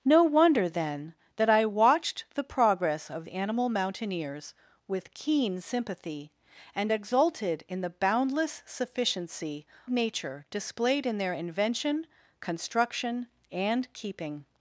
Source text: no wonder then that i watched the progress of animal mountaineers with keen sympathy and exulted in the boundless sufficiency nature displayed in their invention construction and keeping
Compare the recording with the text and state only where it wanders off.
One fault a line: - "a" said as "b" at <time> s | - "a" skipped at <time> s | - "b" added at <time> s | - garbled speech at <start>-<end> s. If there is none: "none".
none